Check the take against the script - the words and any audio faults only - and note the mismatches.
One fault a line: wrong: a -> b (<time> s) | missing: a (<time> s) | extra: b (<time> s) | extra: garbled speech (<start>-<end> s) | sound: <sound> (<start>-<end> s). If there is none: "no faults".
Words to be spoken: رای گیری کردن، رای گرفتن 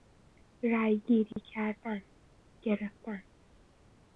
sound: dropout (1.3-1.4 s)
missing: رای (2.0 s)